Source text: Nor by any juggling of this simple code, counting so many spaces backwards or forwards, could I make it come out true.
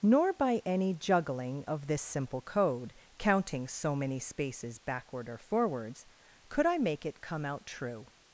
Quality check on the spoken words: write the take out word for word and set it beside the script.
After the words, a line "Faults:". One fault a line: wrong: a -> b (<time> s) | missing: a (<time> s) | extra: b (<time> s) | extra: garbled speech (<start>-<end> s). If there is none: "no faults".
Nor by any juggling of this simple code, counting so many spaces backward or forwards, could I make it come out true.
Faults:
wrong: backwards -> backward (4.8 s)